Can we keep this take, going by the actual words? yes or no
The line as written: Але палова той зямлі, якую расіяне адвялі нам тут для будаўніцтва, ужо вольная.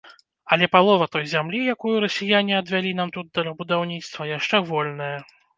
no